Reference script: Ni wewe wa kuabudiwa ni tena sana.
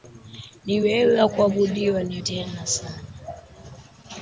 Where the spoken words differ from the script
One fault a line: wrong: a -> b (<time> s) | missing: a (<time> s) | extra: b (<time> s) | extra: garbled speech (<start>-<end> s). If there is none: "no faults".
no faults